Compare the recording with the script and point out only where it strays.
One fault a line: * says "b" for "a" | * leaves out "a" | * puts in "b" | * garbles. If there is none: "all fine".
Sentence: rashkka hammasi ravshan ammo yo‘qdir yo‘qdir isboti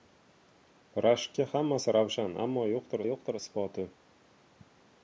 all fine